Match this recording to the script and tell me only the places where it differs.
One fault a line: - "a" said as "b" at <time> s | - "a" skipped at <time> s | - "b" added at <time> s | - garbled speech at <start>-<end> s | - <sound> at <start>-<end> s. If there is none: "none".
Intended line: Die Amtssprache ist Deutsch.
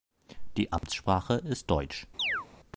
- dropout at 0.8-0.8 s
- chirp at 2.2-2.5 s